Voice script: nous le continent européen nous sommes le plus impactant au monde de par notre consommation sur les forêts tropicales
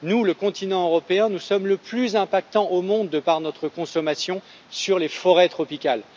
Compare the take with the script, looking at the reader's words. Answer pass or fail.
pass